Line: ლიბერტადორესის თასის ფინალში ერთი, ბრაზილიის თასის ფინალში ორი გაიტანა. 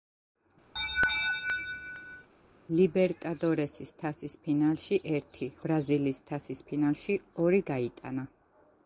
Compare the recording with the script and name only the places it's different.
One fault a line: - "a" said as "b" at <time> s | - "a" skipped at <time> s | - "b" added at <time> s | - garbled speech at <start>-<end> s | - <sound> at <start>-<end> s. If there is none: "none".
- laugh at 0.8-2.3 s